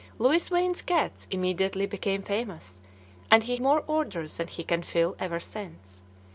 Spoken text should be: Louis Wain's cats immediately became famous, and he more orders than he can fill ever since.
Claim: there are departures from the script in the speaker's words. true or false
false